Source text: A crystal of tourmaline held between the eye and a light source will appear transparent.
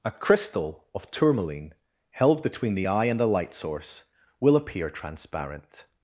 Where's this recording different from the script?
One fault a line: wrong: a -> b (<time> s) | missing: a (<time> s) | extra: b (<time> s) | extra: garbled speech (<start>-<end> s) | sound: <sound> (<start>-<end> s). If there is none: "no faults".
wrong: a -> the (3.2 s)